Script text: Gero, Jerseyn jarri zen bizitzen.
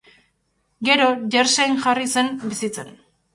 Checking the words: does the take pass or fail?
pass